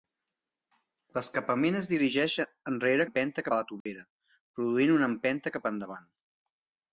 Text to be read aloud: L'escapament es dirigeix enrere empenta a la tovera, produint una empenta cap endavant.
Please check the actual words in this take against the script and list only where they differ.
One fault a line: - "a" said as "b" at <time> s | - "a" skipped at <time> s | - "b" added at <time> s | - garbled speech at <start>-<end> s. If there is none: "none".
none